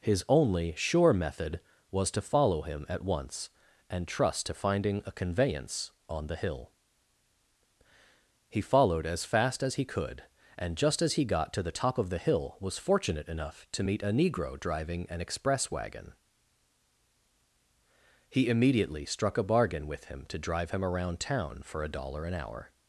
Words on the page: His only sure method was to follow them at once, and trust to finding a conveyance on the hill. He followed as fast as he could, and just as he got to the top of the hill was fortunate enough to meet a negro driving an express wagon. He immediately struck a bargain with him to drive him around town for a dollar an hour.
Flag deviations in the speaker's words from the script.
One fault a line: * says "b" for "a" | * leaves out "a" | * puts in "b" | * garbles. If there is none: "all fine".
* says "him" for "them"